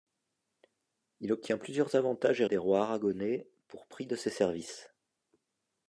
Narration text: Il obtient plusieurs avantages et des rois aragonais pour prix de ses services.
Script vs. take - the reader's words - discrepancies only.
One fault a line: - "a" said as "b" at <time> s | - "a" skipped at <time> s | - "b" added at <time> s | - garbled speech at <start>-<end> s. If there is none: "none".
none